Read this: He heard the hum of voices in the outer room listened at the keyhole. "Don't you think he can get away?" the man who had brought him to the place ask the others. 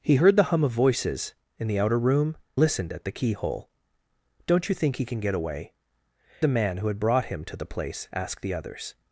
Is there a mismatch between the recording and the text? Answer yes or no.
no